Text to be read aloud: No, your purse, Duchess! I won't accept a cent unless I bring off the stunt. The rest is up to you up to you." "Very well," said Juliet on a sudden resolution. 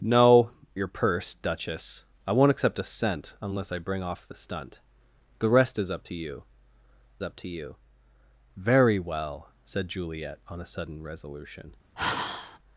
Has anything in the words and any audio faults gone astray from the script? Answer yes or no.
yes